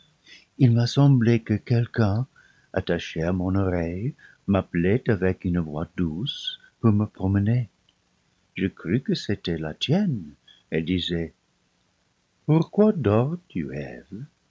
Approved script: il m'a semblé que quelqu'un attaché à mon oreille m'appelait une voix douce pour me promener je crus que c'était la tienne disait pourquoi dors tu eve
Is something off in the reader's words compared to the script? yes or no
yes